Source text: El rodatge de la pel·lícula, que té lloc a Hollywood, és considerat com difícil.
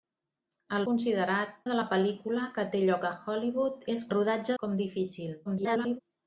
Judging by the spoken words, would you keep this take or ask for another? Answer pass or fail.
fail